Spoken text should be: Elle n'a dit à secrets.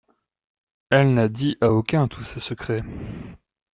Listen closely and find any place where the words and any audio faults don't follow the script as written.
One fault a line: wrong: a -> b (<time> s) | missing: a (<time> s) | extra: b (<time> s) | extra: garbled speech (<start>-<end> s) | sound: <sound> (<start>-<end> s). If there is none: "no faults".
extra: aucun tous ses (1.7 s)